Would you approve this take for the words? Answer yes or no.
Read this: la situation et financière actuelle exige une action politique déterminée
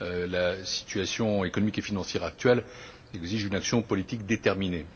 no